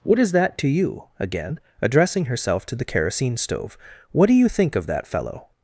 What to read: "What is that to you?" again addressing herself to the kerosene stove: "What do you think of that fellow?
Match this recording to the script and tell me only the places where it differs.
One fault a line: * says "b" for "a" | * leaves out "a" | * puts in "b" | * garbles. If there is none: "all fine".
all fine